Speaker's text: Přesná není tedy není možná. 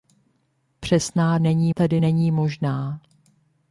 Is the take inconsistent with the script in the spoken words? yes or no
no